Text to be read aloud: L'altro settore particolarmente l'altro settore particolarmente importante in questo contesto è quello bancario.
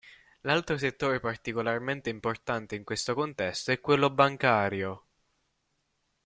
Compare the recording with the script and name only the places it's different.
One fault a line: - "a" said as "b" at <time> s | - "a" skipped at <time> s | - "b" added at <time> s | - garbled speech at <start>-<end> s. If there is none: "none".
- "l'altro settore particolarmente" skipped at 2.1 s